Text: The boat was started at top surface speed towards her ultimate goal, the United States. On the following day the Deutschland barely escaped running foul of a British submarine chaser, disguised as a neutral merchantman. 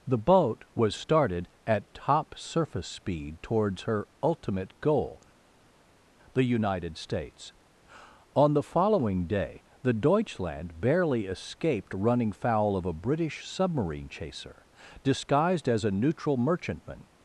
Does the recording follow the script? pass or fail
pass